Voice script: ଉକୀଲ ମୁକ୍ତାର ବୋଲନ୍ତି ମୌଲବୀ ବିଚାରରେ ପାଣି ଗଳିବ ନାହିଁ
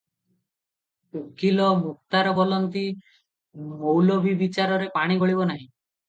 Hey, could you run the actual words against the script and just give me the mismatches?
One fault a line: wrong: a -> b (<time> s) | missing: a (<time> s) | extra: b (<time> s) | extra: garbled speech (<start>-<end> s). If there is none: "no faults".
no faults